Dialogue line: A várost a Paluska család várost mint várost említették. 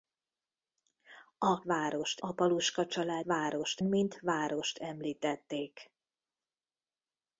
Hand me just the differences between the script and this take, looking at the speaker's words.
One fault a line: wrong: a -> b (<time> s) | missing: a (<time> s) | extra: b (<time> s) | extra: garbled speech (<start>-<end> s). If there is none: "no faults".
no faults